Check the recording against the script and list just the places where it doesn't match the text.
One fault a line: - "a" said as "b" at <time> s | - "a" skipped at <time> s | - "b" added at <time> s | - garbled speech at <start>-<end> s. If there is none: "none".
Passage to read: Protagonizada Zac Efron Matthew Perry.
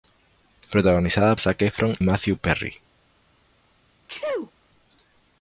none